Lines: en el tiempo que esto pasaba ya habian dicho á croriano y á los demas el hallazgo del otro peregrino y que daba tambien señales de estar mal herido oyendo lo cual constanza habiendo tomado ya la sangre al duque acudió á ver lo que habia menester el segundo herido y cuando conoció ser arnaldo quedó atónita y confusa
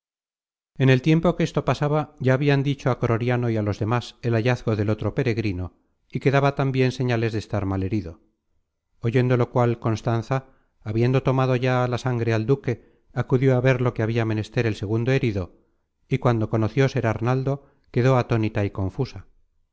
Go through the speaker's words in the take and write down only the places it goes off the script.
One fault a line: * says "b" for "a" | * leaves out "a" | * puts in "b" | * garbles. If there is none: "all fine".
all fine